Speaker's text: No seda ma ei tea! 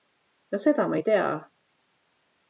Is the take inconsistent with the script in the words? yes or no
no